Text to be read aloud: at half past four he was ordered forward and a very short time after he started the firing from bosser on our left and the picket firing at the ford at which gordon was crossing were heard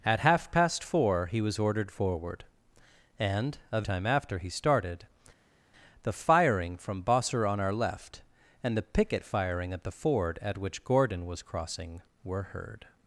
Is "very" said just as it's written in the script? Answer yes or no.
no